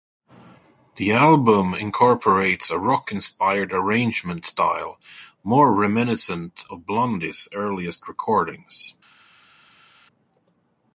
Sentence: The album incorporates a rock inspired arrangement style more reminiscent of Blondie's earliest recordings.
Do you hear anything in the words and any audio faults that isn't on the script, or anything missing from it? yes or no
no